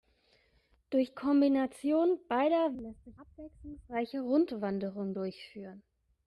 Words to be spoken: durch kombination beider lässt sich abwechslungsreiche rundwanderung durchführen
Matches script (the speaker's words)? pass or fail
pass